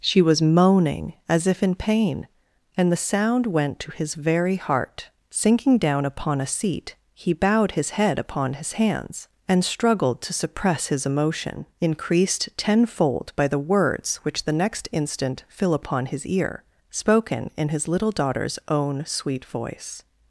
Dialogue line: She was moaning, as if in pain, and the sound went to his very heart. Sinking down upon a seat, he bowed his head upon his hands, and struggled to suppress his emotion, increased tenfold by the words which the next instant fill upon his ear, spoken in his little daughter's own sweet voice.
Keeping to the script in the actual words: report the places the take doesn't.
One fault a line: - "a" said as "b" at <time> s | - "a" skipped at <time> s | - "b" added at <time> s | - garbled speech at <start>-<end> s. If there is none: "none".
none